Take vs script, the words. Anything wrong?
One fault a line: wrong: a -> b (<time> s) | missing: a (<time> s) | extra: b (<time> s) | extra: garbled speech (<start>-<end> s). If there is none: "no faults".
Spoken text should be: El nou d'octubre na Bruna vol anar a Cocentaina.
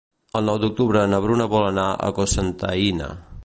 no faults